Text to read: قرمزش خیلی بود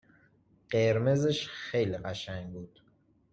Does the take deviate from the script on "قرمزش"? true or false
false